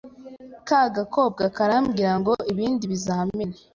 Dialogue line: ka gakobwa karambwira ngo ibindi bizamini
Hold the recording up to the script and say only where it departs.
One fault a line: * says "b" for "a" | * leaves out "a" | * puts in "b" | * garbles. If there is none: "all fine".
all fine